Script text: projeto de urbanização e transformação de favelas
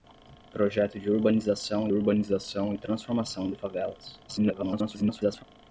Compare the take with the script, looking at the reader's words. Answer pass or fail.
fail